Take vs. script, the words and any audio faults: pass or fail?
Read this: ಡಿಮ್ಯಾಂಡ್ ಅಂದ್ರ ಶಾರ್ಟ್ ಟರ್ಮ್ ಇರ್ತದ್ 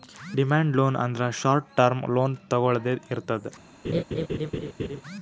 fail